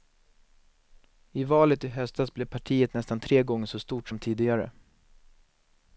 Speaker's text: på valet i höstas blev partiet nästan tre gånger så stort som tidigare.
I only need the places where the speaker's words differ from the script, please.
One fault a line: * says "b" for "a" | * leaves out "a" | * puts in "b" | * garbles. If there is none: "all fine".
* says "I" for "på"